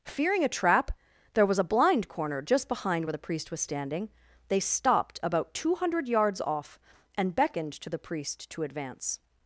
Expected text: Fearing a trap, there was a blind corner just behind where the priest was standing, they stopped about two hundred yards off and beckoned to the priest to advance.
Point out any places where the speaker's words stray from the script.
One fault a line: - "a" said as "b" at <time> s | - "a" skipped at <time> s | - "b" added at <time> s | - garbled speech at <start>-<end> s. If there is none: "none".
none